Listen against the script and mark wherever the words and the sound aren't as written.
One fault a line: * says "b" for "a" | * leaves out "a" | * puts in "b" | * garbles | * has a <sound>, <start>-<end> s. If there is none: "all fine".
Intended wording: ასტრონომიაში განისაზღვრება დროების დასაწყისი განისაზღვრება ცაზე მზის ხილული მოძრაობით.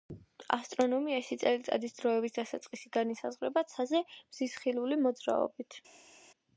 * says "წელიწადის" for "განისაზღვრება"